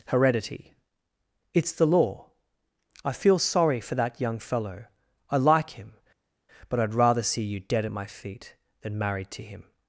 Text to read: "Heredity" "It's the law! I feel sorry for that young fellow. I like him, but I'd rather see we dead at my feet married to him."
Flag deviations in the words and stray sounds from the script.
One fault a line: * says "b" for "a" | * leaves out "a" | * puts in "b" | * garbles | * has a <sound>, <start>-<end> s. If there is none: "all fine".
* says "you" for "we"
* puts in "than"